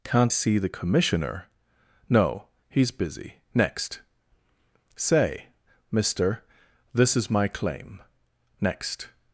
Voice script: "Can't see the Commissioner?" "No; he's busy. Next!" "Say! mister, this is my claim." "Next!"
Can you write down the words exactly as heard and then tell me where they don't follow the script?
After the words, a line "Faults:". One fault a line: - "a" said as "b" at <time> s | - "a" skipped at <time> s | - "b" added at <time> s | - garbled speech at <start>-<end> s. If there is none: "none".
"Can't see the Commissioner?" "No; he's busy. Next!" "Say! mister, this is my claim." "Next!"
Faults:
none